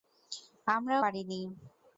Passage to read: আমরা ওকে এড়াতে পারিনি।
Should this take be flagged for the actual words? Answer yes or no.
yes